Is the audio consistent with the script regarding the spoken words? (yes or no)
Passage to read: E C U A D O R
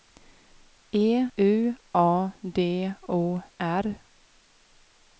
no